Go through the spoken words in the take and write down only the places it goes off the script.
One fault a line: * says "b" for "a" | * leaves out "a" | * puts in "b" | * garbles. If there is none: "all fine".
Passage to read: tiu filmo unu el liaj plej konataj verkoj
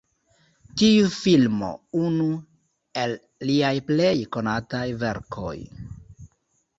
all fine